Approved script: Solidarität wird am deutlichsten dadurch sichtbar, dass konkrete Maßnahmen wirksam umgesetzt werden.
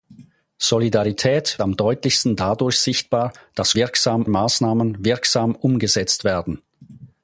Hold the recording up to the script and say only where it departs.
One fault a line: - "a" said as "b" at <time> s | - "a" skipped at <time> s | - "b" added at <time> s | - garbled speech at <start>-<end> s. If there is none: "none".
- "wird" skipped at 1.6 s
- "konkrete" said as "wirksam" at 3.8 s